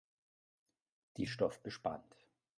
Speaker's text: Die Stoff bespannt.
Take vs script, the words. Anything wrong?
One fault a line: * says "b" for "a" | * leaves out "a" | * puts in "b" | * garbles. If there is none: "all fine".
all fine